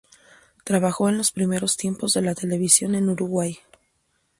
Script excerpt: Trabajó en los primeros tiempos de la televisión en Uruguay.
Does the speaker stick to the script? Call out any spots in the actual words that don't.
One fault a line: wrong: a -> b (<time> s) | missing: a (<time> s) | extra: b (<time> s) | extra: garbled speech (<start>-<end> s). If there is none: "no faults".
no faults